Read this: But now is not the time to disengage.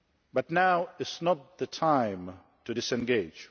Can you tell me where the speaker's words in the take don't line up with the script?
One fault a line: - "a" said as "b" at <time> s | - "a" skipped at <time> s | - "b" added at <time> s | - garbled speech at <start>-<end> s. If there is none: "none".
none